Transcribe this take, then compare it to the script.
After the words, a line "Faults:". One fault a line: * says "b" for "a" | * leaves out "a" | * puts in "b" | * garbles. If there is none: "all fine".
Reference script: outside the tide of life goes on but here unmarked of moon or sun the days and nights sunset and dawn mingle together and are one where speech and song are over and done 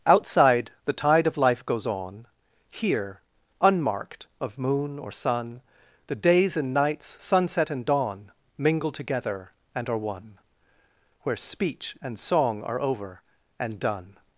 outside the tide of life goes on here unmarked of moon or sun the days and nights sunset and dawn mingle together and are one where speech and song are over and done
Faults:
* leaves out "but"